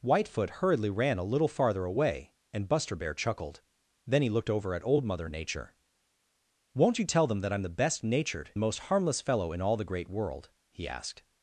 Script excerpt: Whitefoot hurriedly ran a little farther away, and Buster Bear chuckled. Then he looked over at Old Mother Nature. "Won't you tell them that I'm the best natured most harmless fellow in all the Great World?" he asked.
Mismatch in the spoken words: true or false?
false